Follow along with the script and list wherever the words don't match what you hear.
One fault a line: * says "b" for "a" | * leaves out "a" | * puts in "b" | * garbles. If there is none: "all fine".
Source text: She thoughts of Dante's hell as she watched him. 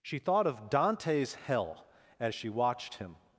* says "thought" for "thoughts"